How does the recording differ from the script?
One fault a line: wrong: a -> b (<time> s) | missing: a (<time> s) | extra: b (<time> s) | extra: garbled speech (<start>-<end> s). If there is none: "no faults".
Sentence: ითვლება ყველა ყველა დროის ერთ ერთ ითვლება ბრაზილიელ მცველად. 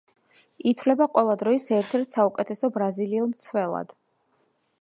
missing: ყველა (1.4 s)
wrong: ითვლება -> საუკეთესო (2.2 s)